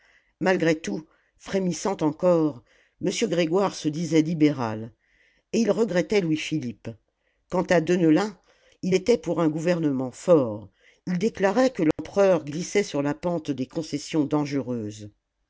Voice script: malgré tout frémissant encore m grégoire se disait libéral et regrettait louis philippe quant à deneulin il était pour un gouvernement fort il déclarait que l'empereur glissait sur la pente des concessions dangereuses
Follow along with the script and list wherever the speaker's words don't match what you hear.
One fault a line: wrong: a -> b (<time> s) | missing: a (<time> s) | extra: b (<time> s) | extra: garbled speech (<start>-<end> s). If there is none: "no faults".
extra: il (5.6 s)